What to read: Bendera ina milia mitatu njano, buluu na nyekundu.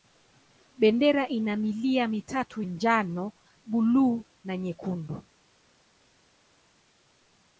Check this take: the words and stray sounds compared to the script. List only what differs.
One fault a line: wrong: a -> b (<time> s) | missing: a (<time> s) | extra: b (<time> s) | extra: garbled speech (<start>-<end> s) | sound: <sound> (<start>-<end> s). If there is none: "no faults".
no faults